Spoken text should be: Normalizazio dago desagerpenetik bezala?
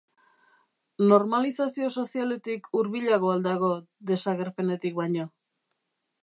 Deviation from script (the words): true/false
true